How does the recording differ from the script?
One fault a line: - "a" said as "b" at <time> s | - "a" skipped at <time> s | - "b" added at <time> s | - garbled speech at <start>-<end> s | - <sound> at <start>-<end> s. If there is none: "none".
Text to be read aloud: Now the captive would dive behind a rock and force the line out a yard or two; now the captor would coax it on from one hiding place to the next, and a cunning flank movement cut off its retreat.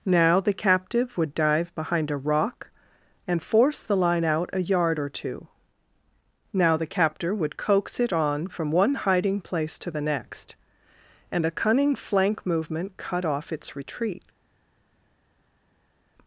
none